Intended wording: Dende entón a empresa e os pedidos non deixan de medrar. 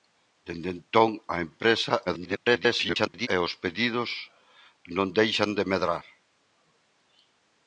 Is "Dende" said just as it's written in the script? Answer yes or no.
yes